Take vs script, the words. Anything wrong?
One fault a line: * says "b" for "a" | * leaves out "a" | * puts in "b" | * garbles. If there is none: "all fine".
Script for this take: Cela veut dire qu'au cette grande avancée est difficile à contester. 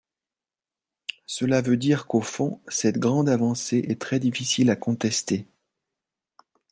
* puts in "fond"
* puts in "très"